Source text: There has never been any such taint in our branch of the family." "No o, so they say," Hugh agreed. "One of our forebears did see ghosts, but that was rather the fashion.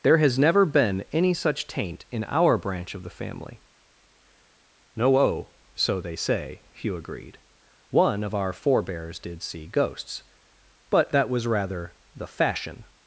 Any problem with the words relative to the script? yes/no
no